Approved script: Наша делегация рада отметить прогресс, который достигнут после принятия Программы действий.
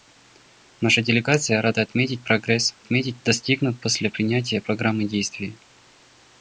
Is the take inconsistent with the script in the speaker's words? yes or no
yes